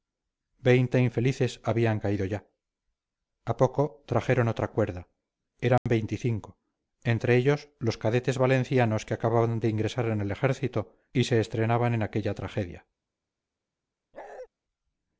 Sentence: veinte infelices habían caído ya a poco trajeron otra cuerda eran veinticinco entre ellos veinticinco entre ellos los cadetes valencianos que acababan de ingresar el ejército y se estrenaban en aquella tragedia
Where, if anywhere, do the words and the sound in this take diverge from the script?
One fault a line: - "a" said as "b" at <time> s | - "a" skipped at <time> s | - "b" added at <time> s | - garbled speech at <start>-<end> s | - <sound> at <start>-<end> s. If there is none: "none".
- dropout at 5.8-5.9 s
- "veinticinco entre ellos" skipped at 7.7 s
- "en" added at 10.1 s
- bark at 14.1-14.5 s